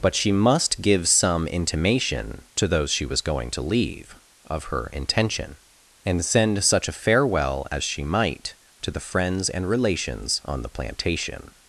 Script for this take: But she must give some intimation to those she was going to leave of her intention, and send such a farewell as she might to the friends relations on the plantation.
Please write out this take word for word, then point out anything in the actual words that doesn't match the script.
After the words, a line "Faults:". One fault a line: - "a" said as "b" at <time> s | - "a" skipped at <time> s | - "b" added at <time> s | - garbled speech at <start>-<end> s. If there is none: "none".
But she must give some intimation to those she was going to leave of her intention, and send such a farewell as she might to the friends and relations on the plantation.
Faults:
- "and" added at 9.5 s